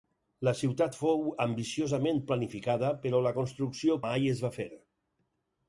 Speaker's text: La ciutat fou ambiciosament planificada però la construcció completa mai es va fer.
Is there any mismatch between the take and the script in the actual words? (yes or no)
yes